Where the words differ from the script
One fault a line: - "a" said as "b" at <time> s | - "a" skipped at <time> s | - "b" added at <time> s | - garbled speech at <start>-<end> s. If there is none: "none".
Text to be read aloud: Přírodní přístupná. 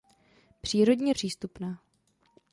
none